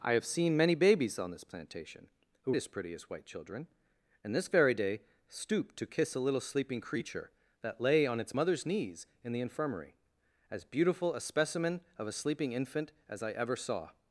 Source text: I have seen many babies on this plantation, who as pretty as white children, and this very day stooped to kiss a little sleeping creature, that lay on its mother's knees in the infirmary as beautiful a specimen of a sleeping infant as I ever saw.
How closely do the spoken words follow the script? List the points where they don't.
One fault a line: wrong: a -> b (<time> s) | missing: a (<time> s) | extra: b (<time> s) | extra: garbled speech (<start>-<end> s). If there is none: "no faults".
no faults